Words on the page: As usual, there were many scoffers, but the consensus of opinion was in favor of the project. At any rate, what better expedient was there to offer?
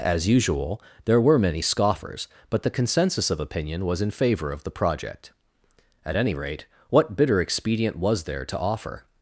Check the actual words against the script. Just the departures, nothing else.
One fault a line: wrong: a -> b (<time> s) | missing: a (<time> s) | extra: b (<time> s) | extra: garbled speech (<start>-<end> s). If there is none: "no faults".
wrong: better -> bitter (7.2 s)